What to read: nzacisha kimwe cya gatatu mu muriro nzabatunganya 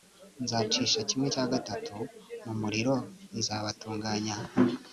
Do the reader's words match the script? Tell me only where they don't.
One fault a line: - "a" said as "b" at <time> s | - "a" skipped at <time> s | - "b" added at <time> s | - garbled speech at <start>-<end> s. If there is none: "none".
none